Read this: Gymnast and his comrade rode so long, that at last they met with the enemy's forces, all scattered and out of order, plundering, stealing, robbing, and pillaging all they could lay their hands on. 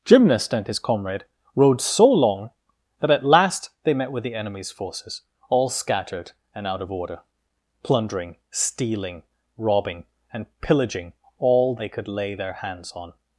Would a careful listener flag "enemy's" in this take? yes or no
no